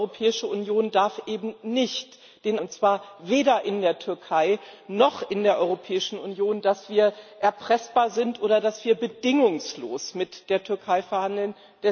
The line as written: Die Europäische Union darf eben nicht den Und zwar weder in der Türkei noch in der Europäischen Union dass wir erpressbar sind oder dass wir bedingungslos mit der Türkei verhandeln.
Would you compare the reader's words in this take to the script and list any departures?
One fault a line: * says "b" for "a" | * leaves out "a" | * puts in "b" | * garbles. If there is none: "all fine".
all fine